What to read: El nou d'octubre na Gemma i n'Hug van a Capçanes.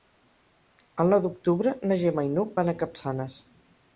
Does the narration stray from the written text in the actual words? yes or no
no